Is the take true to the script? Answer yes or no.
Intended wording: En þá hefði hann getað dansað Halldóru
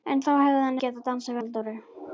yes